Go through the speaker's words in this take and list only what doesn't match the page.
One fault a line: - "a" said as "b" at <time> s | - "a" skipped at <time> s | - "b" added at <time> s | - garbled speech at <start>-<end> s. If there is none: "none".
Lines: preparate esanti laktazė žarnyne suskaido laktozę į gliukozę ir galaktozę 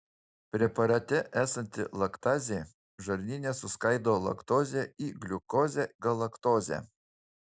- "ir" skipped at 5.9 s